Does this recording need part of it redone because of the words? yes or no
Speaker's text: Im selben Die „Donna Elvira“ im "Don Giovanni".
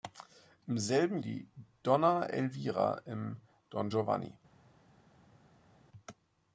no